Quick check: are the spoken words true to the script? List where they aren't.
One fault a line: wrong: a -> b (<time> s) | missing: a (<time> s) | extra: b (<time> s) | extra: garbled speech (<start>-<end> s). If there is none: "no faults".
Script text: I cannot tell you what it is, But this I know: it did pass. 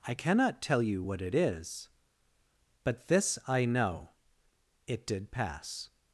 no faults